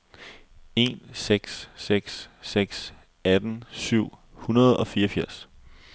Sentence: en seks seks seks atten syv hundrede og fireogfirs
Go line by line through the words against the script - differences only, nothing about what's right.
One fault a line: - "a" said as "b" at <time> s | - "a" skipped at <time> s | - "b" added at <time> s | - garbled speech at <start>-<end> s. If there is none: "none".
none